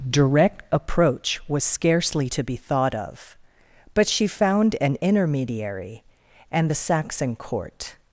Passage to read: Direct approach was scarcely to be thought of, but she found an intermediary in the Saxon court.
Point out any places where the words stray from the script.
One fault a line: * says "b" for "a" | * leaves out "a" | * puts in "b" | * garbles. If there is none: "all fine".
* says "and" for "in"